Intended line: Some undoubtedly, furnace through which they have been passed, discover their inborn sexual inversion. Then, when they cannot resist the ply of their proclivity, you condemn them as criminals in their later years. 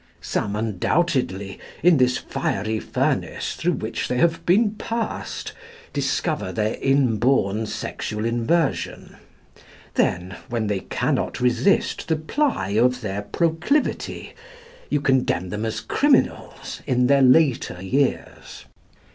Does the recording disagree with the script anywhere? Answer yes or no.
yes